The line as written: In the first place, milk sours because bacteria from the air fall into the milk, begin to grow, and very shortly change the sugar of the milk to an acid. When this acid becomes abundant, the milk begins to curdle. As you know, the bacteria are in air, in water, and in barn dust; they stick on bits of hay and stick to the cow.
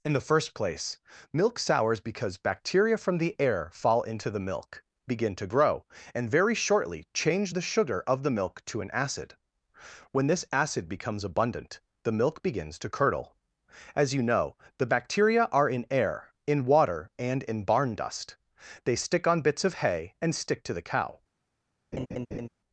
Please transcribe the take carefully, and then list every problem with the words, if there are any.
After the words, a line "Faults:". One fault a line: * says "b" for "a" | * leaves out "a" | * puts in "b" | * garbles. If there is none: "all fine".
In the first place, milk sours because bacteria from the air fall into the milk, begin to grow, and very shortly change the sugar of the milk to an acid. When this acid becomes abundant, the milk begins to curdle. As you know, the bacteria are in air, in water, and in barn dust; they stick on bits of hay and stick to the cow.
Faults:
all fine